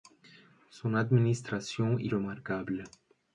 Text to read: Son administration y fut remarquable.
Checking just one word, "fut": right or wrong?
wrong